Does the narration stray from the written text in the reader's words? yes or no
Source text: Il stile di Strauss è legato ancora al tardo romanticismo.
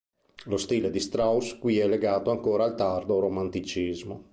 yes